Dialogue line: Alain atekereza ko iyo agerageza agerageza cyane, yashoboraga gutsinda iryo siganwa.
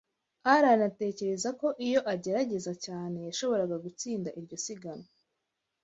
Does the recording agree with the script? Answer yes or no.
no